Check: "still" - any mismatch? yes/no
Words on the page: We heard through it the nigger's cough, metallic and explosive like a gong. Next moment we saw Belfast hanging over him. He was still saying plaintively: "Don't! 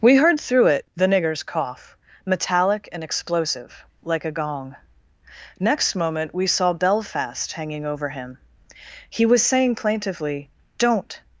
yes